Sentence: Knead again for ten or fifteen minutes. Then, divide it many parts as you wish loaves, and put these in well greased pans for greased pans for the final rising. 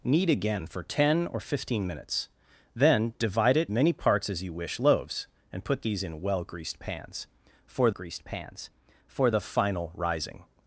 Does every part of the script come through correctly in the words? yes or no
yes